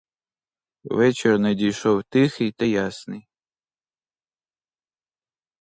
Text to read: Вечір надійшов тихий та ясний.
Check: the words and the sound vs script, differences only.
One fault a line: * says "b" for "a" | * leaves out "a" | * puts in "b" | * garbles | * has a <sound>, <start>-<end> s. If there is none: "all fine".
all fine